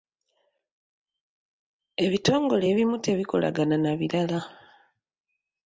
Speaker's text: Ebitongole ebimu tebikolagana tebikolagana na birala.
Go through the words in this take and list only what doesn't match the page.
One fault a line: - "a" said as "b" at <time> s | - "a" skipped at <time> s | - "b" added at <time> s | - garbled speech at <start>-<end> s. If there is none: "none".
- "tebikolagana" skipped at 3.7 s